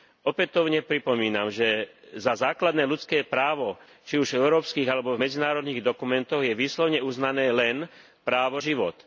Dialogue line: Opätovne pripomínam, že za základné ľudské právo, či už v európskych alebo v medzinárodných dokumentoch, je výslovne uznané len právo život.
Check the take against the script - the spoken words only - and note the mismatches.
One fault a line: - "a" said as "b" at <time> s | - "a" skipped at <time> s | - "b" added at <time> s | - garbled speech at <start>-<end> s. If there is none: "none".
none